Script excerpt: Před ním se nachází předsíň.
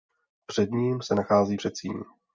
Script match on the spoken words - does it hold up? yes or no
yes